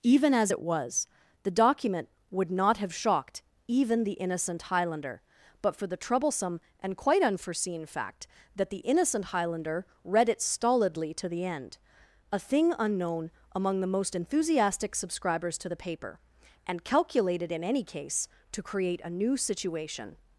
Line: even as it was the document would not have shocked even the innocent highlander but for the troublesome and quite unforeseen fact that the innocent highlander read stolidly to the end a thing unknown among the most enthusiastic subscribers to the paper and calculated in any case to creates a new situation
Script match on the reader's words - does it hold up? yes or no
no